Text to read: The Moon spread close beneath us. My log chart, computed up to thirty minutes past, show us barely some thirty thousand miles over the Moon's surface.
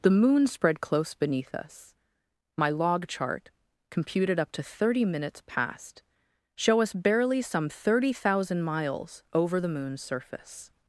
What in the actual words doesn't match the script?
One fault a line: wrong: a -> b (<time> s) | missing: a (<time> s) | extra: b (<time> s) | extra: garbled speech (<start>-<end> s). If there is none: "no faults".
no faults